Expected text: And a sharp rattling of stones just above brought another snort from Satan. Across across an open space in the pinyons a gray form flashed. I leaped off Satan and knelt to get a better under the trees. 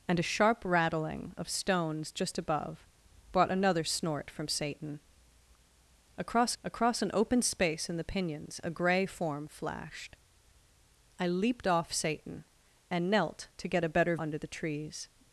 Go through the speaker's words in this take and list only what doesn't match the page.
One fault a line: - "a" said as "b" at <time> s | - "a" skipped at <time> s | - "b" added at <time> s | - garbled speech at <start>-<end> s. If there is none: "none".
none